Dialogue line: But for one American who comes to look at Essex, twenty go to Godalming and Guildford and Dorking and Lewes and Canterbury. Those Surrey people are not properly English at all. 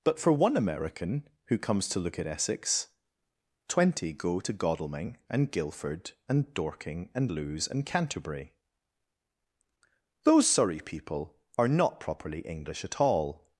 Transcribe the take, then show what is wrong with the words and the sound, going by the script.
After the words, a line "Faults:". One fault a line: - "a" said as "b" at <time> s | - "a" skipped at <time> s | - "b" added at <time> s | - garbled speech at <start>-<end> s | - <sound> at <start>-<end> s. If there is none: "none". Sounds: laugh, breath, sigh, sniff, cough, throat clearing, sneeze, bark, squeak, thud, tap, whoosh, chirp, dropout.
But for one American who comes to look at Essex, twenty go to Godalming and Guildford and Dorking and Lewes and Canterbury. Those Surrey people are not properly English at all.
Faults:
none